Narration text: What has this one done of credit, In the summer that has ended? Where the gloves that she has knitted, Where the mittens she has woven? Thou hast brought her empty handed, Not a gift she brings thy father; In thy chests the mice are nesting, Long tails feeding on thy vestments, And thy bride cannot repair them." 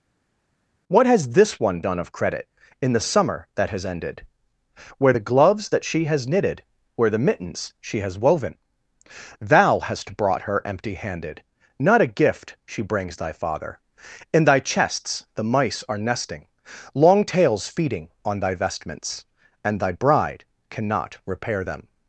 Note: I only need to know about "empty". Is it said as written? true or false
true